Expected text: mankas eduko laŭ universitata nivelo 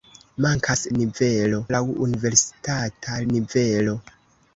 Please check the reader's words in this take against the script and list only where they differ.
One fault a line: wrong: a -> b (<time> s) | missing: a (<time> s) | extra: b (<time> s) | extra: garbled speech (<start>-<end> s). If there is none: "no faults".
wrong: eduko -> nivelo (1.0 s)